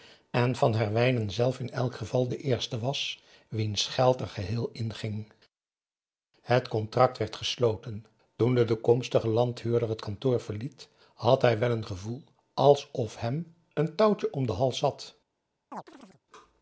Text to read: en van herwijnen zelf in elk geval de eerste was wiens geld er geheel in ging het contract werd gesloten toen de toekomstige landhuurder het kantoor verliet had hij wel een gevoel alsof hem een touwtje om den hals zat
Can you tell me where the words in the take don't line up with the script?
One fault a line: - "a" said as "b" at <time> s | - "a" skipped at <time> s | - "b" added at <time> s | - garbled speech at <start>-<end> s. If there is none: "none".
none